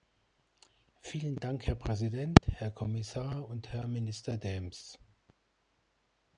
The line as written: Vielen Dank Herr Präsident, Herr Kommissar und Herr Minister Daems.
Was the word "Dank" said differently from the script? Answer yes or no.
no